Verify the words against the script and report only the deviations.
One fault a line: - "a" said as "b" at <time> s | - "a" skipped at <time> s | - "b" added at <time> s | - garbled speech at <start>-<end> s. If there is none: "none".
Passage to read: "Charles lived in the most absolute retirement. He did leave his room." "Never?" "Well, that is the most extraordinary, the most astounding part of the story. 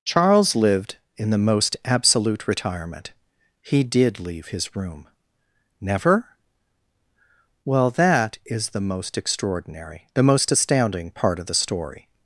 none